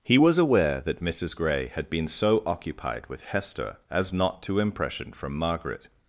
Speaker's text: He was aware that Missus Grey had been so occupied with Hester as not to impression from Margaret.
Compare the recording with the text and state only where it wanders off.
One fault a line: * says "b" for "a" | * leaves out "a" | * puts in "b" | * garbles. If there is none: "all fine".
all fine